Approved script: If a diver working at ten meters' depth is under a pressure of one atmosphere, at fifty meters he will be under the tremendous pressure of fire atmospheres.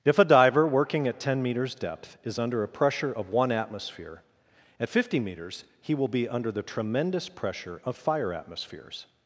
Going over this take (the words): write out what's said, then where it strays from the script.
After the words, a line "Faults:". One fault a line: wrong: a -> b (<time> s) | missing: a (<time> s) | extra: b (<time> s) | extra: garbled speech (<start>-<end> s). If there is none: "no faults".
If a diver working at ten meters' depth is under a pressure of one atmosphere, at fifty meters he will be under the tremendous pressure of fire atmospheres.
Faults:
no faults